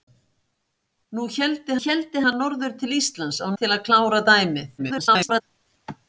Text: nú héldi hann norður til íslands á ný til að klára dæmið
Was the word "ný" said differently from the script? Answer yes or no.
yes